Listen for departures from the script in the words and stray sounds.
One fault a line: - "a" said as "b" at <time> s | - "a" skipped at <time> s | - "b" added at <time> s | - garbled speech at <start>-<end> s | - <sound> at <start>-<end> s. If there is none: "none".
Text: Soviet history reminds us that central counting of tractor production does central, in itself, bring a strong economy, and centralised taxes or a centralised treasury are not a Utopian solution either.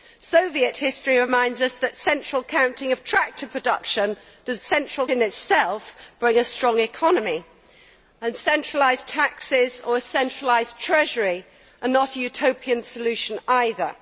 none